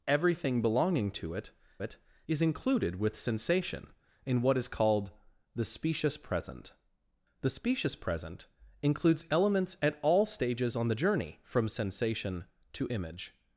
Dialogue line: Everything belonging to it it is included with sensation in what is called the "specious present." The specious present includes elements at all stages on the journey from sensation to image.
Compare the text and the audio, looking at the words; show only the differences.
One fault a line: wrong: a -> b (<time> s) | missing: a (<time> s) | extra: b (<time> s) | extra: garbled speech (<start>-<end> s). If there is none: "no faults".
no faults